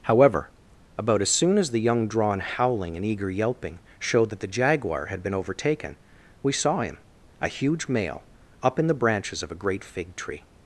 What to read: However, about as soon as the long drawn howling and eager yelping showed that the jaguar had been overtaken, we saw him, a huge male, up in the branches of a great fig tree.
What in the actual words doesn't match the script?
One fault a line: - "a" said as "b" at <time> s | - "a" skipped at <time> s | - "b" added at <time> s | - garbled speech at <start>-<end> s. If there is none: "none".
- "long" said as "young" at 1.8 s